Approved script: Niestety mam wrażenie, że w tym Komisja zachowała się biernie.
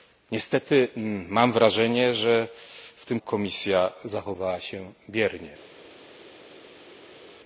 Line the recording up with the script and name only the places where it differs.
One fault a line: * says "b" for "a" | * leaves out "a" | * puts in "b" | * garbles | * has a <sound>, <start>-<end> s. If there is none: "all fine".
all fine